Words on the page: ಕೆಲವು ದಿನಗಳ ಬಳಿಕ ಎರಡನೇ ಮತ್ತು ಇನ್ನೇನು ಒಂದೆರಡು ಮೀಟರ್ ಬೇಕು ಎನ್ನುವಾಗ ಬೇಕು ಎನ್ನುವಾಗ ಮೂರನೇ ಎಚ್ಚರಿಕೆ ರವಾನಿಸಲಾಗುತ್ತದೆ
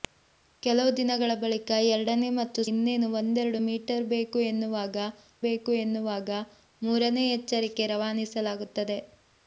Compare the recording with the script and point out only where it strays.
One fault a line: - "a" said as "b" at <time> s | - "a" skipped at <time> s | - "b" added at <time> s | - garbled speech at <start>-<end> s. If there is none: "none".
none